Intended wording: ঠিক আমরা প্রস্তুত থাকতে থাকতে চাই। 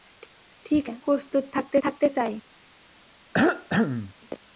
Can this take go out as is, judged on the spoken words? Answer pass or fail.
pass